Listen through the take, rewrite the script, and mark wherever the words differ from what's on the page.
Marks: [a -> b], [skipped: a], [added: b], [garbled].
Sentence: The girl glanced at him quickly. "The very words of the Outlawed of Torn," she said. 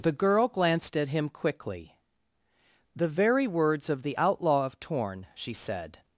The girl glanced at him quickly. "The very words of the [Outlawed -> Outlaw] of Torn," she said.